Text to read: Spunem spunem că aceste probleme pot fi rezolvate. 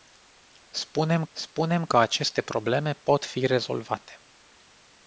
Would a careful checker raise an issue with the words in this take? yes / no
no